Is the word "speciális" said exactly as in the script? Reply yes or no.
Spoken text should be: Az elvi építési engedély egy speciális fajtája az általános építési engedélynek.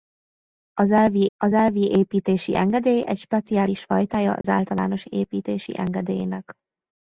yes